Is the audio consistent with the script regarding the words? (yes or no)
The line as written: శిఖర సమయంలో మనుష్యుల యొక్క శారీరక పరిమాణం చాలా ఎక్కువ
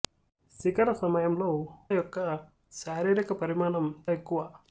no